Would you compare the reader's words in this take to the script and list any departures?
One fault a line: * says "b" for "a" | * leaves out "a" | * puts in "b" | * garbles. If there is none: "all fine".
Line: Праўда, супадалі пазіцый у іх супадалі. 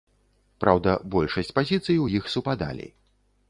* says "большасць" for "супадалі"